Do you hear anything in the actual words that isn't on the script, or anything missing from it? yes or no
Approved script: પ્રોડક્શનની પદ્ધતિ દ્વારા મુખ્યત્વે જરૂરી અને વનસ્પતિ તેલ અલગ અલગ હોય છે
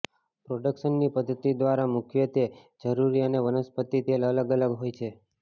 no